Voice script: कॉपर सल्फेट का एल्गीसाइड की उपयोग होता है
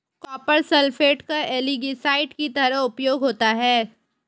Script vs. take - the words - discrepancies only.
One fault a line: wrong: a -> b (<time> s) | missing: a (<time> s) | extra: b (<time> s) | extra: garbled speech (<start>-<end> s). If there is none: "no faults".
extra: तरह (2.5 s)